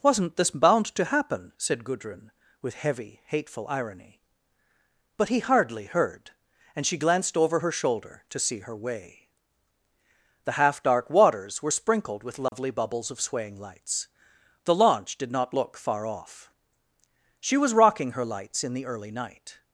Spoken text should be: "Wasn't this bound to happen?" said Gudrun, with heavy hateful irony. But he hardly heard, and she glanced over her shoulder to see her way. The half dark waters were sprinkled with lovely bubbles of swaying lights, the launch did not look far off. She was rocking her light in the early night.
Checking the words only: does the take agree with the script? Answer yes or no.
no